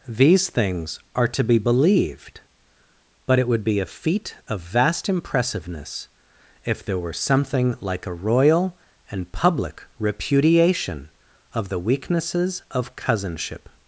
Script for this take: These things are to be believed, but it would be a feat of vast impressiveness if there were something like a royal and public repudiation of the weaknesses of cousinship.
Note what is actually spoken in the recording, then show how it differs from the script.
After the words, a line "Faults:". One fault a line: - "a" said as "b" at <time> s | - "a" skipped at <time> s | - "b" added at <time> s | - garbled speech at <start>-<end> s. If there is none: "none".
These things are to be believed, but it would be a feat of vast impressiveness if there were something like a royal and public repudiation of the weaknesses of cousinship.
Faults:
none